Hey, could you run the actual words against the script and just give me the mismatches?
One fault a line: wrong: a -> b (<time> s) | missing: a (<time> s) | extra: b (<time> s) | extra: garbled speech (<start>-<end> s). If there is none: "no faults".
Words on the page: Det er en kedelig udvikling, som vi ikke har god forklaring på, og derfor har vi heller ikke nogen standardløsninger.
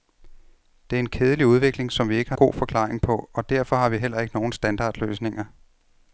no faults